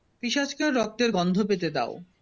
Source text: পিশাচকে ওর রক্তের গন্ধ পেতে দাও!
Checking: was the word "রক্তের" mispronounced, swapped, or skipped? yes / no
no